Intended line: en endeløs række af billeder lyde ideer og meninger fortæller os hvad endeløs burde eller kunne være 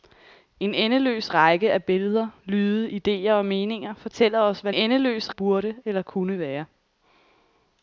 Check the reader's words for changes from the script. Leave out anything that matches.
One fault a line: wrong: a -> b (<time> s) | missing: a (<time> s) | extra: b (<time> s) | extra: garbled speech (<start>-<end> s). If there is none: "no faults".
no faults